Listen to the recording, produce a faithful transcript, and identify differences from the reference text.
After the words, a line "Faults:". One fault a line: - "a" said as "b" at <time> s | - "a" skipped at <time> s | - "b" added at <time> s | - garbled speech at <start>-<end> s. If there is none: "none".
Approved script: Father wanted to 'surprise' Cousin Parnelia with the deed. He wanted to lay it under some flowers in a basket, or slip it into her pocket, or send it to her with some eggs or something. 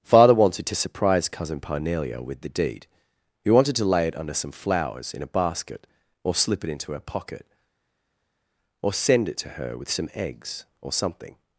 Father wanted to 'surprise' Cousin Parnelia with the deed. He wanted to lay it under some flowers in a basket, or slip it into her pocket, or send it to her with some eggs or something.
Faults:
none